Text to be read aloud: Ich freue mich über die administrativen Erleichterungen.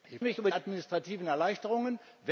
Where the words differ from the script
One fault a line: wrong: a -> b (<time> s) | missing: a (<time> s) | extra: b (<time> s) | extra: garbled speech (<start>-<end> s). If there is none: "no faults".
missing: freue (0.2 s)
missing: die (0.5 s)